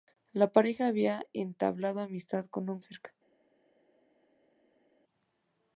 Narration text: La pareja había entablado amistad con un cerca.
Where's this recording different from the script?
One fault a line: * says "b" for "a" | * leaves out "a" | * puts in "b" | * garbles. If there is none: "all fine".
all fine